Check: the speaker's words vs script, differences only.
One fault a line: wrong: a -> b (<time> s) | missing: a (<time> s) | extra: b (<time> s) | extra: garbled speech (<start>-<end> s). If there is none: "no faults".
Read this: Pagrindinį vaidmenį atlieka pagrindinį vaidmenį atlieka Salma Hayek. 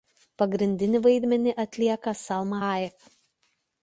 missing: pagrindinį vaidmenį atlieka (2.1 s)